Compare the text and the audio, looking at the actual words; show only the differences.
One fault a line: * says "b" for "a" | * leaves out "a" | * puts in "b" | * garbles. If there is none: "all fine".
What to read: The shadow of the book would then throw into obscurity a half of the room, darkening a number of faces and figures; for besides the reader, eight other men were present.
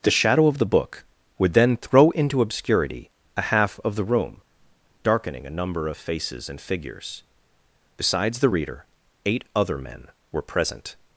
* leaves out "for"